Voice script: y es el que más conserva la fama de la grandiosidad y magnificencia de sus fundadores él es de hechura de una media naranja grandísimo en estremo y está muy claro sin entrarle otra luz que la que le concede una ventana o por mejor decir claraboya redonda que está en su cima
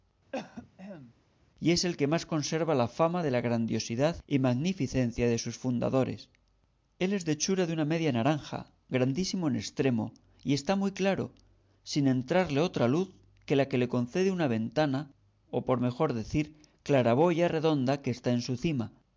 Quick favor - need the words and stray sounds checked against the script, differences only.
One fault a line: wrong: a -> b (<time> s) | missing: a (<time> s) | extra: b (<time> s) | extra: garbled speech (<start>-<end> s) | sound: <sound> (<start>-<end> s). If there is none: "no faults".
sound: cough (0.3-1.1 s)